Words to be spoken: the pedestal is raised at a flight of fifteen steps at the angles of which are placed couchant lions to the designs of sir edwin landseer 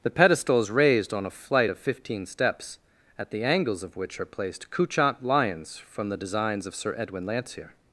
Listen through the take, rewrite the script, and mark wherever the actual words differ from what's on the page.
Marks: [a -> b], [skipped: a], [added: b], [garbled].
the pedestal is raised [at -> on] a flight of fifteen steps at the angles of which are placed couchant lions [to -> from] the designs of sir edwin landseer